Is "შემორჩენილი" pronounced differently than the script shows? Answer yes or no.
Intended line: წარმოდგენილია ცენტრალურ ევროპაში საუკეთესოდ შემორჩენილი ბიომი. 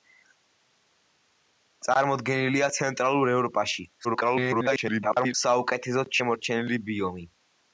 no